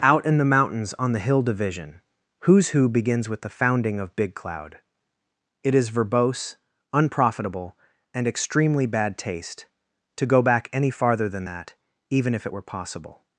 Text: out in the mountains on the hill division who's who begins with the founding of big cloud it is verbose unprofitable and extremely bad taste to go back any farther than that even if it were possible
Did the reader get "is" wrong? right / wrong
right